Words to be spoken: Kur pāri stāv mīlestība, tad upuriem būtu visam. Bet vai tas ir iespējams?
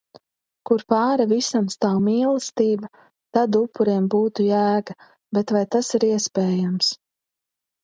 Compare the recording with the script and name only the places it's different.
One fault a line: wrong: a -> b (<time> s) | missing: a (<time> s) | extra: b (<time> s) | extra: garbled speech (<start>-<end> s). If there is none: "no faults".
extra: visam (1.3 s)
wrong: visam -> jēga (4.5 s)